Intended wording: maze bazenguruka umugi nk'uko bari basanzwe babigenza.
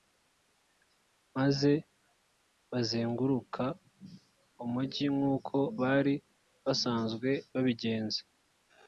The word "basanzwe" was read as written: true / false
true